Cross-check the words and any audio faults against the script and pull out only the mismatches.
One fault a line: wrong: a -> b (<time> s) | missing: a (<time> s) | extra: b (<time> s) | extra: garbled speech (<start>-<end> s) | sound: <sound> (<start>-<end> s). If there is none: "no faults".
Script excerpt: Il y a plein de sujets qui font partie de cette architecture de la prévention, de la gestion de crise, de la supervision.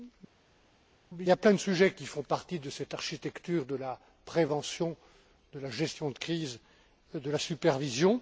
no faults